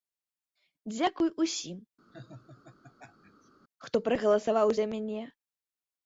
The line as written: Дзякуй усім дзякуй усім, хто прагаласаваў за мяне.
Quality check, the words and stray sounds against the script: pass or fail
fail